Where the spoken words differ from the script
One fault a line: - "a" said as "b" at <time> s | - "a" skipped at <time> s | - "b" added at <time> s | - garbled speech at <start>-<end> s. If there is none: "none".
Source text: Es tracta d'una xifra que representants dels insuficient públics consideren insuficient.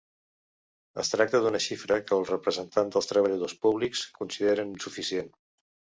- "els" added at 2.2 s
- "insuficient" said as "treballadors" at 3.1 s